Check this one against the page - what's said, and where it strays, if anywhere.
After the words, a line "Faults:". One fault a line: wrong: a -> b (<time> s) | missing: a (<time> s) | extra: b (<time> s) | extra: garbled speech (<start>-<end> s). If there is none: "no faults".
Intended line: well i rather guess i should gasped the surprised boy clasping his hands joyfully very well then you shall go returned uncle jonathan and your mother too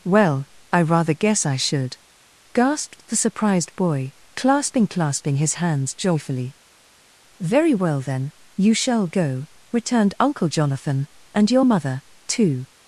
well i rather guess i should gasped the surprised boy clasping clasping his hands joyfully very well then you shall go returned uncle jonathan and your mother too
Faults:
extra: clasping (4.9 s)